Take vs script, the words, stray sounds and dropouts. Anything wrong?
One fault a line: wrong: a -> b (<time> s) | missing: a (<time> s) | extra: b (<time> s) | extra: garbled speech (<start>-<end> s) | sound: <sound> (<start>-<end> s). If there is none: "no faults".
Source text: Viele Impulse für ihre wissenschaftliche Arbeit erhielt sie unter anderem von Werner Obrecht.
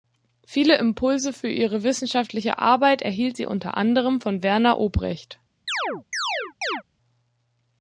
sound: chirp (5.7-6.8 s)